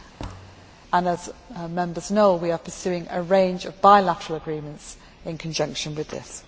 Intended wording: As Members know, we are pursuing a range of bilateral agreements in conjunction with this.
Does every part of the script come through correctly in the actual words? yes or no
yes